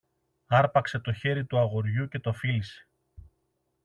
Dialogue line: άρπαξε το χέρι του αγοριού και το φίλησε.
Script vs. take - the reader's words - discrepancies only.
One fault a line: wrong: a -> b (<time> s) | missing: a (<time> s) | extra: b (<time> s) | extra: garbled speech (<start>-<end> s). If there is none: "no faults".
no faults